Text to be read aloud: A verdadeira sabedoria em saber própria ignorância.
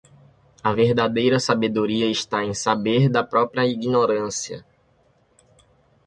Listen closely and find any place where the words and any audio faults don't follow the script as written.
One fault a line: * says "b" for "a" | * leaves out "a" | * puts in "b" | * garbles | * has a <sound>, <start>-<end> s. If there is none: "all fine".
* puts in "está"
* puts in "da"